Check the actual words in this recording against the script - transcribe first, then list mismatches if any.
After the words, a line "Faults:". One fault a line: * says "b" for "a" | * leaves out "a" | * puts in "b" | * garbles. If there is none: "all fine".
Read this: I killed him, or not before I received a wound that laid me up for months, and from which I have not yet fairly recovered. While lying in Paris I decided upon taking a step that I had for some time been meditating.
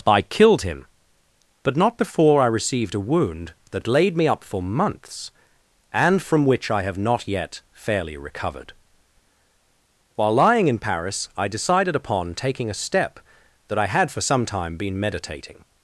I killed him, but not before I received a wound that laid me up for months, and from which I have not yet fairly recovered. While lying in Paris I decided upon taking a step that I had for some time been meditating.
Faults:
* says "but" for "or"